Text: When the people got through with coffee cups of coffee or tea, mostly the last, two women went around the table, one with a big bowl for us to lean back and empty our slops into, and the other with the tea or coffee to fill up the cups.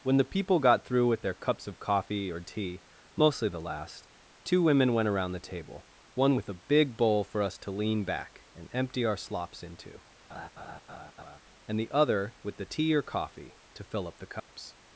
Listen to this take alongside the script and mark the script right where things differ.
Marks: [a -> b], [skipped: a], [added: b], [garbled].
When the people got through with [coffee -> their] cups of coffee or tea, mostly the last, two women went around the table, one with a big bowl for us to lean back and empty our slops into, and the other with the tea or coffee to fill up the cups.